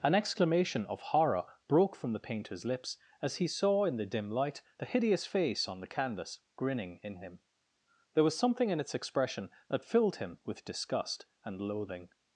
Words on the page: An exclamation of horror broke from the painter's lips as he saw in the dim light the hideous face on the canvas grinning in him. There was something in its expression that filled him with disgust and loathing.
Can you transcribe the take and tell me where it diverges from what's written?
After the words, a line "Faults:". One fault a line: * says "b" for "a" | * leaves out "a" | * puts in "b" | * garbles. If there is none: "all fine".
An exclamation of horror broke from the painter's lips as he saw in the dim light the hideous face on the canvas grinning in him. There was something in its expression that filled him with disgust and loathing.
Faults:
all fine